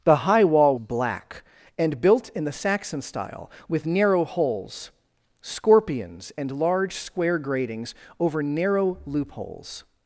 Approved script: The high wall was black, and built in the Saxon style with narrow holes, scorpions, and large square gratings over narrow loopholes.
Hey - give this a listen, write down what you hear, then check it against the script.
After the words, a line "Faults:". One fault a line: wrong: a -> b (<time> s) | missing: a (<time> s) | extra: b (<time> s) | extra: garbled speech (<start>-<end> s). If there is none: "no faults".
The high wall black, and built in the Saxon style with narrow holes, scorpions, and large square gratings over narrow loopholes.
Faults:
missing: was (0.8 s)